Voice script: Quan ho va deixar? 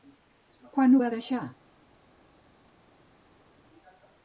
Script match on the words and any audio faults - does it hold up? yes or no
yes